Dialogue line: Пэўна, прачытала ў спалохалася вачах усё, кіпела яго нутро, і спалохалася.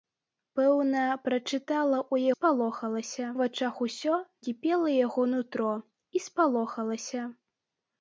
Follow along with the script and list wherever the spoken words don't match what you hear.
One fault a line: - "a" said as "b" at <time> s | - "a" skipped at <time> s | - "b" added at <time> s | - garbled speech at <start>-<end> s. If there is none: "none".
none